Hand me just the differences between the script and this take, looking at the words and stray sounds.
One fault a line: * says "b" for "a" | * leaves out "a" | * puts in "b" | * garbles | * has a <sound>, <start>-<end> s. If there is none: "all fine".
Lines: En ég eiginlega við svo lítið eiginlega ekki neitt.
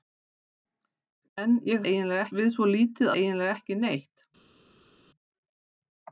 all fine